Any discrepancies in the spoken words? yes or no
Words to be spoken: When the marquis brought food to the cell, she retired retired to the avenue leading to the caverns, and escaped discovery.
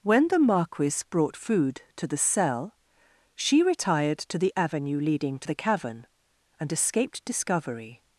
yes